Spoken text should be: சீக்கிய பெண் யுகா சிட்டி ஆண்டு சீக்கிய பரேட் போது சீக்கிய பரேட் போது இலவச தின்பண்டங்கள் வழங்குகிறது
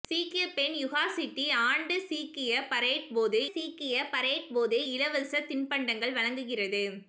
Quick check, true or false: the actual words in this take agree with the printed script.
true